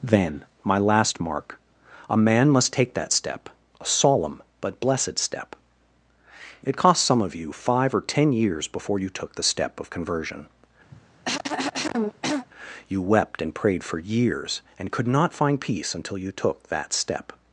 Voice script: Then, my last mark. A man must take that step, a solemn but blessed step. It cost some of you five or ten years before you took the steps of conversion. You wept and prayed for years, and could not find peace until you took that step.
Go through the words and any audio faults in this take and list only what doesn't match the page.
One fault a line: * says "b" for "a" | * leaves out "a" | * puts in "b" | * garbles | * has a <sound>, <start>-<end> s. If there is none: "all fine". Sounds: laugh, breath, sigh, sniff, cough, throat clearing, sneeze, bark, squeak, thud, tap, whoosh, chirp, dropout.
* says "step" for "steps"
* has a cough, 10.9-12.5 s